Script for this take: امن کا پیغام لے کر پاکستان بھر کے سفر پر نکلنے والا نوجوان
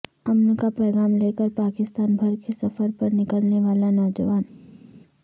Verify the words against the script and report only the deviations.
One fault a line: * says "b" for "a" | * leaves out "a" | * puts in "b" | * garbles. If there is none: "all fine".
all fine